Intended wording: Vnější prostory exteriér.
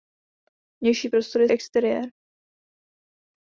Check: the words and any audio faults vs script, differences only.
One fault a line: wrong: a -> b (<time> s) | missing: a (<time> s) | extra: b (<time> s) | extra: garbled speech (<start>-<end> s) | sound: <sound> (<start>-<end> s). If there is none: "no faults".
no faults